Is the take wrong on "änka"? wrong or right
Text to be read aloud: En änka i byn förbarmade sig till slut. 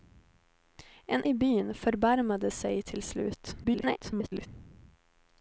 wrong